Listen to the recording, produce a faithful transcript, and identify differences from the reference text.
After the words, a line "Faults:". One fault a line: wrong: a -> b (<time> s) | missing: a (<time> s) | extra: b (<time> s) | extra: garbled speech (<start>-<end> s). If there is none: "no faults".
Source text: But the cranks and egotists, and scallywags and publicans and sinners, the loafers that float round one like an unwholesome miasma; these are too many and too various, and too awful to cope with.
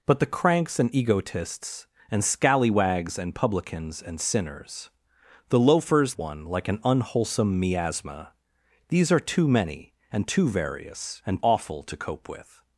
But the cranks and egotists, and scallywags and publicans and sinners, the loafers one like an unwholesome miasma; these are too many and too various, and awful to cope with.
Faults:
missing: that float round (6.2 s)
missing: too (11.4 s)